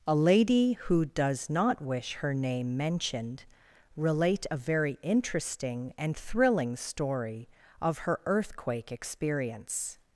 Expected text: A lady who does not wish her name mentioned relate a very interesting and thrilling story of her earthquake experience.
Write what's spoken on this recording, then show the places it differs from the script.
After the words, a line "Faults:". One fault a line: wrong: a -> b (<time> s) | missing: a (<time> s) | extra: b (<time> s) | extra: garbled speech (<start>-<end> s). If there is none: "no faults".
A lady who does not wish her name mentioned relate a very interesting and thrilling story of her earthquake experience.
Faults:
no faults